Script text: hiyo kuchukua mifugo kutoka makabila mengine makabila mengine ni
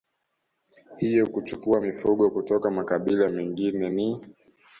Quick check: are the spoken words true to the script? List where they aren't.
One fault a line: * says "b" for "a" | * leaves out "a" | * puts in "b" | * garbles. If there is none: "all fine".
* leaves out "makabila mengine"